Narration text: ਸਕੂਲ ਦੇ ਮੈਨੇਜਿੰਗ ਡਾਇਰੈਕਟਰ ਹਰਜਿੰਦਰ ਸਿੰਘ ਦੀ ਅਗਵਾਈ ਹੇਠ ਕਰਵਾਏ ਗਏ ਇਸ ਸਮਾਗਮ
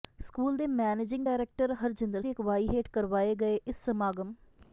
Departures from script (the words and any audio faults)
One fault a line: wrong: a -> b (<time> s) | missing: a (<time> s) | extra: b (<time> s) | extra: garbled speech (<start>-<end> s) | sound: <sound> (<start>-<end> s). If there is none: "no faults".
missing: ਸਿੰਘ (2.2 s)